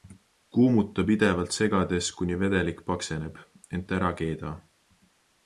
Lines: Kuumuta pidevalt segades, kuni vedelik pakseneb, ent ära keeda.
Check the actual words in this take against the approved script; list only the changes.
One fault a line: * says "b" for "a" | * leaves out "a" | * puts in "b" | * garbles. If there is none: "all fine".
all fine